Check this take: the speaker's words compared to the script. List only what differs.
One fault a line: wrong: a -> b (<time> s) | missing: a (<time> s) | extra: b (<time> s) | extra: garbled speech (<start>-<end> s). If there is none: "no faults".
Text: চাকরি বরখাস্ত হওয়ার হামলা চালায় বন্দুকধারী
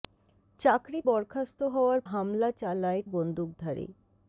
no faults